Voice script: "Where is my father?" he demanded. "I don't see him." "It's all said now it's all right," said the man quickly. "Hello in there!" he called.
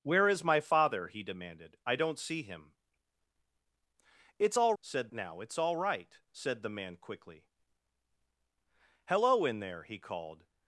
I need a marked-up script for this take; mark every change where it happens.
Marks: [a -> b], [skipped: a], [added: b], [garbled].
"Where is my father?" he demanded. "I don't see him." "It's all said now it's all right," said the man quickly. "Hello in there!" he called.